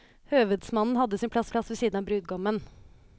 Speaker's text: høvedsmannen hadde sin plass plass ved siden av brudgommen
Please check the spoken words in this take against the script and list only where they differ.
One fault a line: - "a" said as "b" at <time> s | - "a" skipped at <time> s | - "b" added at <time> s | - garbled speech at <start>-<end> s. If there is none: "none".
none